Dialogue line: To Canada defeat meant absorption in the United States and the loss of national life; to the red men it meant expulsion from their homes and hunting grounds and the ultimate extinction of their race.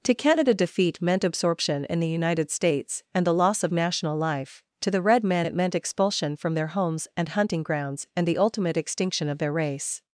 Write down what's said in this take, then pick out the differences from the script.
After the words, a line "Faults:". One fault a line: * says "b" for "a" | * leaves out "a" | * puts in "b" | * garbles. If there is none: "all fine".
To Canada defeat meant absorption in the United States and the loss of national life; to the red men it meant expulsion from their homes and hunting grounds and the ultimate extinction of their race.
Faults:
all fine